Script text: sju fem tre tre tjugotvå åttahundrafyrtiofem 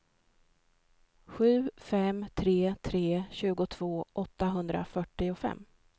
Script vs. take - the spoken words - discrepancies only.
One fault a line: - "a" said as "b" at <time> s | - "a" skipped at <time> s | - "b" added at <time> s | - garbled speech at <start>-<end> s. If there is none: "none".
none